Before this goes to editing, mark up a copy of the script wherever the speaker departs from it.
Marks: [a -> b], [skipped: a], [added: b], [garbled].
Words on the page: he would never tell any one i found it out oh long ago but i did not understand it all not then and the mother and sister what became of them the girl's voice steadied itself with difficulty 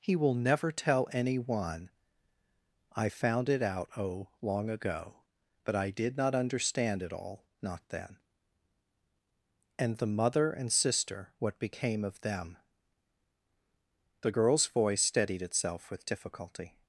he [would -> will] never tell any one i found it out oh long ago but i did not understand it all not then and the mother and sister what became of them the girl's voice steadied itself with difficulty